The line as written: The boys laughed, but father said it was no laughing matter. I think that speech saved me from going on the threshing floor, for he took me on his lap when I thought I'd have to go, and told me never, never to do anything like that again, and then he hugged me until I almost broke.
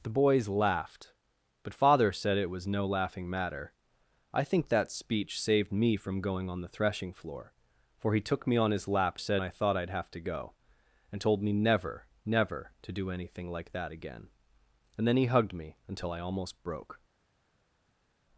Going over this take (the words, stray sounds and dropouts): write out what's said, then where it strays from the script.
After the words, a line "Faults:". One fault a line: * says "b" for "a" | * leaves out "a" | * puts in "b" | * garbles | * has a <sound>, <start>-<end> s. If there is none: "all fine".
The boys laughed, but father said it was no laughing matter. I think that speech saved me from going on the threshing floor, for he took me on his lap said I thought I'd have to go, and told me never, never to do anything like that again, and then he hugged me until I almost broke.
Faults:
* says "said" for "when"